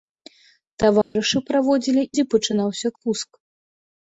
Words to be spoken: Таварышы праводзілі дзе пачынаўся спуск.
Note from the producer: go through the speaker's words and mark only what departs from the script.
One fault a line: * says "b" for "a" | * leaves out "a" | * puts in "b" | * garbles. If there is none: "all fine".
all fine